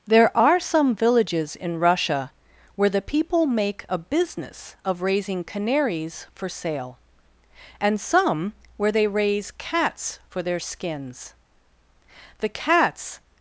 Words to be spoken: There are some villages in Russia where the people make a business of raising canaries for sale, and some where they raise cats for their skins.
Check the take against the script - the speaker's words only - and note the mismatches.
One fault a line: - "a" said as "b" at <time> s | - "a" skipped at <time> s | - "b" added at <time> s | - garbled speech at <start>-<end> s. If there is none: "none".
- "The cats" added at 12.4 s